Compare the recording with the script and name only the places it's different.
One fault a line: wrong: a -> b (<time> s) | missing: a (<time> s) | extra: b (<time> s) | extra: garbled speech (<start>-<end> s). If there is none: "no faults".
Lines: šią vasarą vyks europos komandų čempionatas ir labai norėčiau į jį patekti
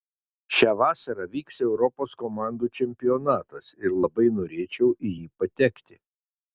no faults